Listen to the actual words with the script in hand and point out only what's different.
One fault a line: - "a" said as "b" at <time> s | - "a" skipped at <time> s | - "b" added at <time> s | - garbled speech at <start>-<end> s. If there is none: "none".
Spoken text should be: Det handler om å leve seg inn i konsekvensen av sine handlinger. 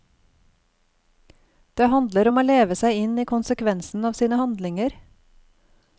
none